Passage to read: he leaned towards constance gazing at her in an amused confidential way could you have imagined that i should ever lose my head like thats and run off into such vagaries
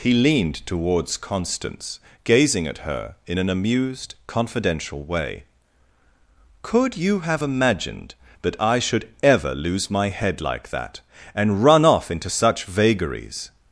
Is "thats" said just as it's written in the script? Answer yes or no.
no